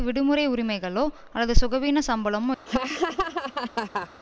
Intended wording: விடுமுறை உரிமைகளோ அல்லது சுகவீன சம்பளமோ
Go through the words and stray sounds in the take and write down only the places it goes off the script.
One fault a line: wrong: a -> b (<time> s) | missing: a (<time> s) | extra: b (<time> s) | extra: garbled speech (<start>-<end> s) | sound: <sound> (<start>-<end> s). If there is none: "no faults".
sound: laugh (2.7-4.1 s)